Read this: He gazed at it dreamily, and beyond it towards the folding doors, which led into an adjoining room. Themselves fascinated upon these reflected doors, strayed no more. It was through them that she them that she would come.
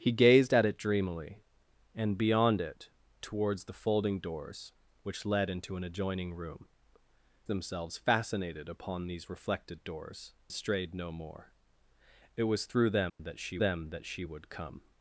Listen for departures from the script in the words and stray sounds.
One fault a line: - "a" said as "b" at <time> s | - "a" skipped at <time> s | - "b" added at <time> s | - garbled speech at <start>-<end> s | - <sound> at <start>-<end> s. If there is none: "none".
- dropout at 13.1-13.2 s